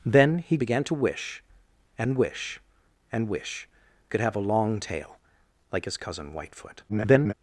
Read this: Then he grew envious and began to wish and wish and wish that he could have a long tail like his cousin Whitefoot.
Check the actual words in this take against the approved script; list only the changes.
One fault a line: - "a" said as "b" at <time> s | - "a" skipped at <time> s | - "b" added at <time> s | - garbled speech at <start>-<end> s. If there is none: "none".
- "grew envious and" skipped at 0.6 s
- "that he" skipped at 3.7 s
- garbled speech at 6.9-7.3 s